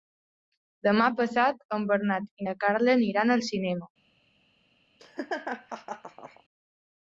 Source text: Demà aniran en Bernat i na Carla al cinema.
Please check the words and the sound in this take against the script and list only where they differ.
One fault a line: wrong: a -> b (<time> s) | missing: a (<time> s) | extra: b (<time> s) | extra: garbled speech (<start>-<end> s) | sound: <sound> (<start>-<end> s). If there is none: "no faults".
wrong: aniran -> passat (1.2 s)
extra: aniran (3.0 s)
sound: laugh (5.0-6.4 s)